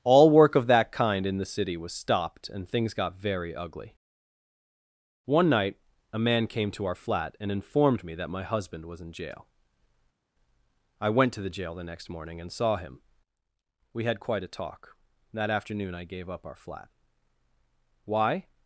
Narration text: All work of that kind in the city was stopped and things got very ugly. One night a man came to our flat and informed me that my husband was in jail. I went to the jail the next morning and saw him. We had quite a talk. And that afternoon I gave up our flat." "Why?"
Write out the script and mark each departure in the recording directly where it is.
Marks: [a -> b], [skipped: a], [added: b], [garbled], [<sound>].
All work of that kind in the city was stopped and things got very ugly. One night a man came to our flat and informed me that my husband was in jail. I went to the jail the next morning and saw him. We had quite a talk. [skipped: And] that afternoon I gave up our flat." "Why?"